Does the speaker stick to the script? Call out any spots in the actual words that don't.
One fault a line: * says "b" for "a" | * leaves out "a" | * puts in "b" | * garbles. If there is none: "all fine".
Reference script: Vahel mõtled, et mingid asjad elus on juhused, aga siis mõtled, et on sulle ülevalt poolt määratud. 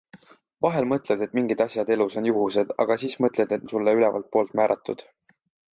all fine